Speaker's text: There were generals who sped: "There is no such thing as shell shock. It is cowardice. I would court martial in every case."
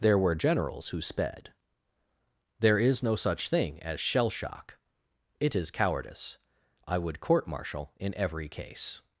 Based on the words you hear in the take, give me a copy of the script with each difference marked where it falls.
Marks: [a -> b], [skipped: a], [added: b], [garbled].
There were generals who sped: "There is no such thing as shell shock. It is cowardice. I would court martial in every case."